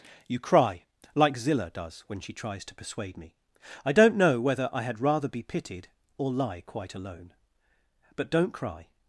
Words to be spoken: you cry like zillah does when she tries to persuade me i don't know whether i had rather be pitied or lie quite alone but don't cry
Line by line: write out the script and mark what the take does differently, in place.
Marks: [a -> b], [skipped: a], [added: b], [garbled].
you cry like zillah does when she tries to persuade me i don't know whether i had rather be pitied or lie quite alone but don't cry